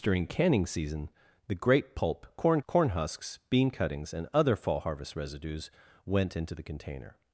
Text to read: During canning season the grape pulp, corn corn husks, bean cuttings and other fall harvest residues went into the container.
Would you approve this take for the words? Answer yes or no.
yes